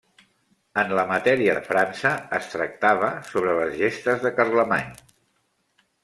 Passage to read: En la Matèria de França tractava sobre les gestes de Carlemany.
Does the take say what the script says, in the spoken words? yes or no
no